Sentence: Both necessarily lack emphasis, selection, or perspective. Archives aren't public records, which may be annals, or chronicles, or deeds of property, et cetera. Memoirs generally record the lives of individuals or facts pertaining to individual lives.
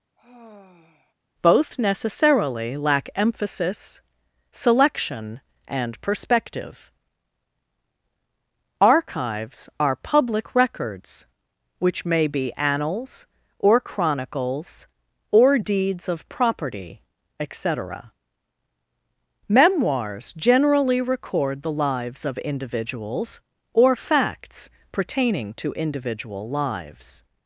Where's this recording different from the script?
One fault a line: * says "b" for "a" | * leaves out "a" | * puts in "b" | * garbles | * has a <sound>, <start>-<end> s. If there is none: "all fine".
* has a sigh, 0.2-1.1 s
* says "and" for "or"
* says "are" for "aren't"